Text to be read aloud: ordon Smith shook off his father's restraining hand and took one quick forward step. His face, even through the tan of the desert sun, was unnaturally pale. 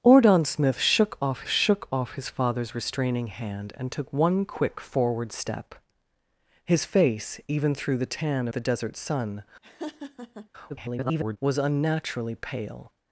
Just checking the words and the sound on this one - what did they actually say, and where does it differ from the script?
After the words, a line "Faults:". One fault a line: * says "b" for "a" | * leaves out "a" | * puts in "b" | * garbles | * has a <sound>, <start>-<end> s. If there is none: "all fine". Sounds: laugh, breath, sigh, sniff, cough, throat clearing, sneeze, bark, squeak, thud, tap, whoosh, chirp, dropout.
ordon Smith shook off shook off his father's restraining hand and took one quick forward step. His face, even through the tan the desert sun, [garbled] was unnaturally pale.
Faults:
* puts in "shook off"
* leaves out "of"
* has a laugh, 9.6-10.5 s
* garbles